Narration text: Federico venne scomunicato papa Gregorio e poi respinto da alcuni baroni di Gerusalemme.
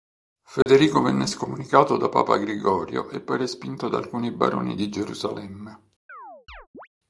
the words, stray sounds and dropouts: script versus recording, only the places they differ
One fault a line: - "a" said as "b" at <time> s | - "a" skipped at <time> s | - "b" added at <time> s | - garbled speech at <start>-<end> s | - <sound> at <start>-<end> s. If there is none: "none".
- dropout at 0.6-0.7 s
- "da" added at 1.9 s
- chirp at 6.1-6.9 s